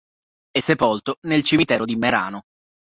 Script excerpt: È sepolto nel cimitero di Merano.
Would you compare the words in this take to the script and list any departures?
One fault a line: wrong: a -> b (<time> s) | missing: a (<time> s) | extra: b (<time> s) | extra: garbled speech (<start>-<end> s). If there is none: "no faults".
no faults